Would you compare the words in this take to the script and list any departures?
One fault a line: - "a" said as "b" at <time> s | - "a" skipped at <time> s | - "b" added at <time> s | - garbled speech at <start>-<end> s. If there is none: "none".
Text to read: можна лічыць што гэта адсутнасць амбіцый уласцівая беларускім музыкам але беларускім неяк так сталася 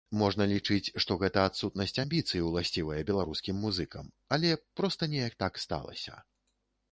- "беларускім" said as "проста" at 4.8 s